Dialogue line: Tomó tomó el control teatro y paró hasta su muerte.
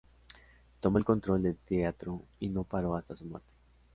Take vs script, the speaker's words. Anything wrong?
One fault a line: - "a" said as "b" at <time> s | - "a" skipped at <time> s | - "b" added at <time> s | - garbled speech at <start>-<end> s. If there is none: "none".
- "tomó" skipped at 1.0 s
- "del" added at 1.4 s
- "no" added at 2.5 s